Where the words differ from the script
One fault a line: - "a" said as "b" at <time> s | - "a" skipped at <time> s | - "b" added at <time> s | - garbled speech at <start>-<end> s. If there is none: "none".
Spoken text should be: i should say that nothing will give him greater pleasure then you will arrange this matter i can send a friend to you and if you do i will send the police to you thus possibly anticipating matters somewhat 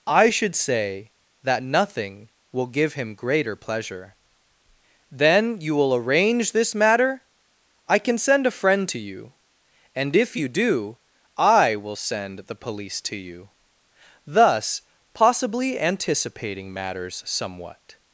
none